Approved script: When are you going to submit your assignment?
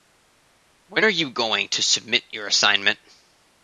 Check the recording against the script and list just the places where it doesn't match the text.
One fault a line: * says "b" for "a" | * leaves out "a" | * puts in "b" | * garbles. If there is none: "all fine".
all fine